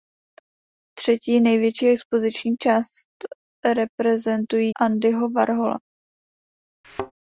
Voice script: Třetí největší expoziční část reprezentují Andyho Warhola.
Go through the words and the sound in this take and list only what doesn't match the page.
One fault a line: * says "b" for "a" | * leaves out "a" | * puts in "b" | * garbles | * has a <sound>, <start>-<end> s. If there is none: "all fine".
* has a thud, 6.8-7.1 s